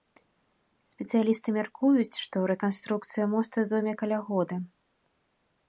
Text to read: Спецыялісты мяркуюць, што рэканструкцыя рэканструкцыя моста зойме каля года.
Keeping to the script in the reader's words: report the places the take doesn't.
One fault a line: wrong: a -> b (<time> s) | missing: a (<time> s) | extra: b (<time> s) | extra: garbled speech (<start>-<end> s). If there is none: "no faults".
missing: рэканструкцыя (3.2 s)